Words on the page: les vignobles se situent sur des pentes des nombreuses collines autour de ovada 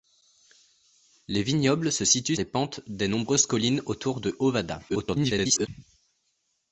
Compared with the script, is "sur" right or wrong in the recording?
wrong